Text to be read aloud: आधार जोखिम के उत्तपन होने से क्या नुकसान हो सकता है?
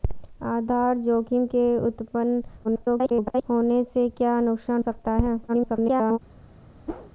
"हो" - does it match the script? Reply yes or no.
no